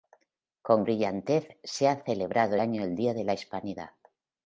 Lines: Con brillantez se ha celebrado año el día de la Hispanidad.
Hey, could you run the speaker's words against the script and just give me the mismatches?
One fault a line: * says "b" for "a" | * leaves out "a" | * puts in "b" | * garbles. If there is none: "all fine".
all fine